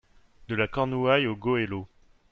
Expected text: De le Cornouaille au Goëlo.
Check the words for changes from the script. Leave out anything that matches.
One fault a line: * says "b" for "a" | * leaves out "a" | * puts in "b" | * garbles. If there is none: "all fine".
* says "la" for "le"